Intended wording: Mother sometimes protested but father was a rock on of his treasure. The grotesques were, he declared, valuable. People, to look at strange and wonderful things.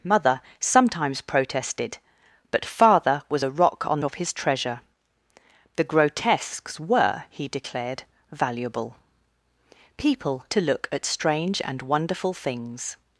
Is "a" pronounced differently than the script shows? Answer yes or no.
no